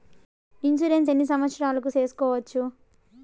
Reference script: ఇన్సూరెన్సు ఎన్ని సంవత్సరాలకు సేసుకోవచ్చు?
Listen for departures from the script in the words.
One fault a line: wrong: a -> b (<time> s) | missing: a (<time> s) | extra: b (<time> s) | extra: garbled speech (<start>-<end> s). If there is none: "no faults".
no faults